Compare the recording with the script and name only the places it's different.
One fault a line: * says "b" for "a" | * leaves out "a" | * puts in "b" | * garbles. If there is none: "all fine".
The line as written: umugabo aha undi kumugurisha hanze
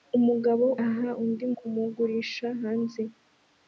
all fine